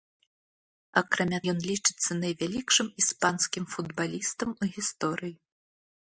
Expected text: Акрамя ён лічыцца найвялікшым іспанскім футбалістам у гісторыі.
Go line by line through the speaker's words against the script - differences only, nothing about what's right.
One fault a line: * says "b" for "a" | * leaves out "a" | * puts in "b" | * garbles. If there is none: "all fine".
all fine